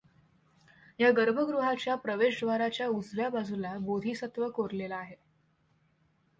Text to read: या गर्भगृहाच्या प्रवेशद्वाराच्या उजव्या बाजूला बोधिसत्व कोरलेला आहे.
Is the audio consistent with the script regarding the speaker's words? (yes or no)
yes